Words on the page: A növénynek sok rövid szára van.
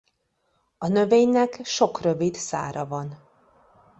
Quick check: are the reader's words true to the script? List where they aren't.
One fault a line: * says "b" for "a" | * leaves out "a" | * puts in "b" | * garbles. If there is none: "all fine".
all fine